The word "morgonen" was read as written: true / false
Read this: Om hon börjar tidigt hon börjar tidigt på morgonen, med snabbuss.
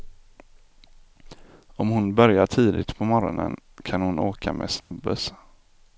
false